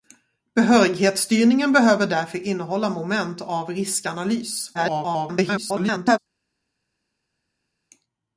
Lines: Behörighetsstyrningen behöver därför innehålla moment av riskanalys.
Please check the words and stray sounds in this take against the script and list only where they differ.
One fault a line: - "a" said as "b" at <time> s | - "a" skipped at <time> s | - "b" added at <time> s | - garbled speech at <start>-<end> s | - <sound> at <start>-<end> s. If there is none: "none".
- garbled speech at 4.7-6.2 s